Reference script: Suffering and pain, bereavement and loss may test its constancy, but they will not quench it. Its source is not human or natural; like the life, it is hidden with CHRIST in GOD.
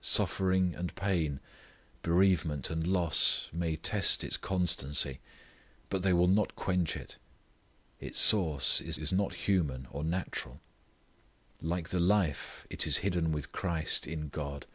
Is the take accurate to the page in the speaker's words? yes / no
no